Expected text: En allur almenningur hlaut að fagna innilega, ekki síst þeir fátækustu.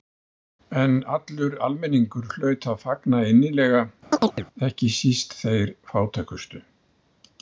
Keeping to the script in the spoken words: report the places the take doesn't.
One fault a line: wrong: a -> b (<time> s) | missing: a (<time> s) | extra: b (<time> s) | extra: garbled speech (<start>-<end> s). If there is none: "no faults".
no faults